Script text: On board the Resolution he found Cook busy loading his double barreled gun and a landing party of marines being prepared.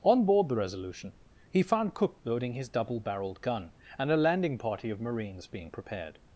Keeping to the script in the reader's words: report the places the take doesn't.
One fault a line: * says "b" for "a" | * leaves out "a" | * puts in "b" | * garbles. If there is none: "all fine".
* leaves out "busy"